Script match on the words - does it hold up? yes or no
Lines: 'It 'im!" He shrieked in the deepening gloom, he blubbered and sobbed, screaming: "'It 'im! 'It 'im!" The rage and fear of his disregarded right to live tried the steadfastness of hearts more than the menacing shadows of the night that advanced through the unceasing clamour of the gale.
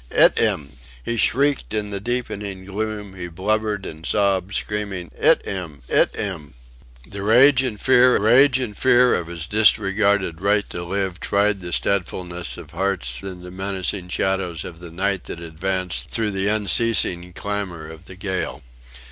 no